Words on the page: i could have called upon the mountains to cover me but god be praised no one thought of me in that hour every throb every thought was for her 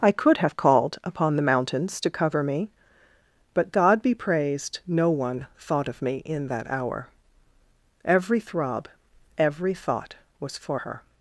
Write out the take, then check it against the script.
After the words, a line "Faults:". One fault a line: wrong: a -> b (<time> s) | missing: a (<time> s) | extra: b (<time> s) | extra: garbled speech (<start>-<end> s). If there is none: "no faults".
i could have called upon the mountains to cover me but god be praised no one thought of me in that hour every throb every thought was for her
Faults:
no faults